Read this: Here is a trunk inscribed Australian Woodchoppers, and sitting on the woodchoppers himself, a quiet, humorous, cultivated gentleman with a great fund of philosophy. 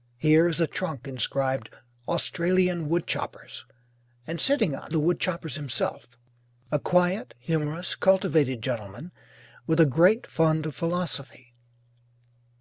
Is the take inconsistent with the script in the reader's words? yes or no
no